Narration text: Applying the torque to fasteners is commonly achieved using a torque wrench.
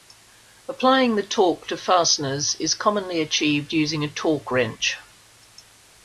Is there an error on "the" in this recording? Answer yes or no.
no